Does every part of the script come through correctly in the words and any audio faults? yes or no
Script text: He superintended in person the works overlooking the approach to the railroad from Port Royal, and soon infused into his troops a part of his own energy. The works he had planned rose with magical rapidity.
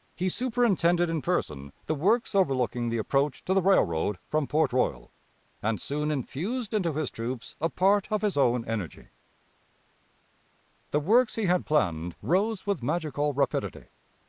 yes